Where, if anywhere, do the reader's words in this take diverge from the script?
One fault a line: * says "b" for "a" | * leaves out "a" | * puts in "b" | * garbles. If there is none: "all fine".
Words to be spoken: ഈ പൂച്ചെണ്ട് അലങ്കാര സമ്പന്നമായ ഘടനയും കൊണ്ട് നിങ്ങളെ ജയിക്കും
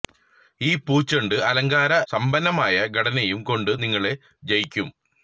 all fine